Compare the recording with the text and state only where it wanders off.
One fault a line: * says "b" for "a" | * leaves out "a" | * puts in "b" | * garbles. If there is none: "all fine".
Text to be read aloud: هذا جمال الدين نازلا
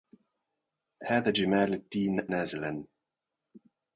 all fine